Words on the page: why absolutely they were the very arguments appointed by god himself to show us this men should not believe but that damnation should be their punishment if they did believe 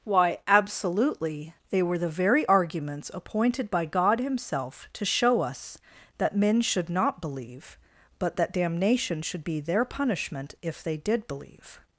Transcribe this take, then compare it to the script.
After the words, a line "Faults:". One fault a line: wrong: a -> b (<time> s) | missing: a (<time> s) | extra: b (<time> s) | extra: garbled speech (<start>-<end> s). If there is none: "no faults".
why absolutely they were the very arguments appointed by god himself to show us that men should not believe but that damnation should be their punishment if they did believe
Faults:
wrong: this -> that (6.2 s)